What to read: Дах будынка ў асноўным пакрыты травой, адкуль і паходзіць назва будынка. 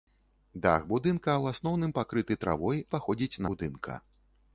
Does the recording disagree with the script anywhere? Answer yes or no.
yes